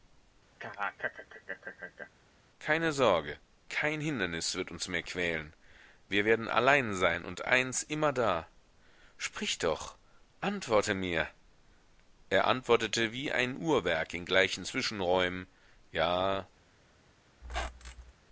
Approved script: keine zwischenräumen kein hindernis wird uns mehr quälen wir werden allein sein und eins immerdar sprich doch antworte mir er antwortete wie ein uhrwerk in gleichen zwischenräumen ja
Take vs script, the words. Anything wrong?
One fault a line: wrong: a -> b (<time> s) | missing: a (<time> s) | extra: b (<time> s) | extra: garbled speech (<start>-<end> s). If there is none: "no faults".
wrong: zwischenräumen -> sorge (2.9 s)